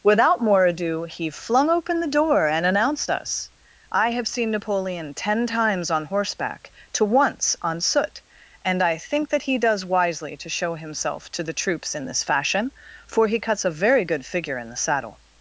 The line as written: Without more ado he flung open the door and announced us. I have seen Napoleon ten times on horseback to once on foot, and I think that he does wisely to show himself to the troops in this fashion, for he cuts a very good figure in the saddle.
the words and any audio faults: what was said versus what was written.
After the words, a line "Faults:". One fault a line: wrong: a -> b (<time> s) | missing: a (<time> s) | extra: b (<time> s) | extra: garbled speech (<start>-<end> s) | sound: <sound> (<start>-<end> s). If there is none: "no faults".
Without more ado he flung open the door and announced us. I have seen Napoleon ten times on horseback to once on soot, and I think that he does wisely to show himself to the troops in this fashion, for he cuts a very good figure in the saddle.
Faults:
wrong: foot -> soot (7.8 s)